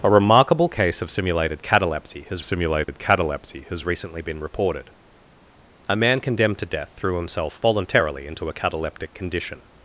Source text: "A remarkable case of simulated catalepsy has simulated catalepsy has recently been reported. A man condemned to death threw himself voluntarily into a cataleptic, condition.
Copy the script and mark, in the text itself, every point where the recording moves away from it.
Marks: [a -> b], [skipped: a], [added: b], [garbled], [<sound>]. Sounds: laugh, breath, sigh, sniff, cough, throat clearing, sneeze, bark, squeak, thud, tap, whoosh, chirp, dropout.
"A remarkable case of simulated catalepsy has simulated [dropout] catalepsy has recently been reported. A man condemned to death threw himself voluntarily into a cataleptic, condition.